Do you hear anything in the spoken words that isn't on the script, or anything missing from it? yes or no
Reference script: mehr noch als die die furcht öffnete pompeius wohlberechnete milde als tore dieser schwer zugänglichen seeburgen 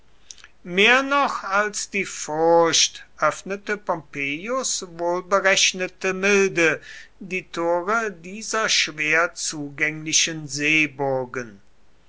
yes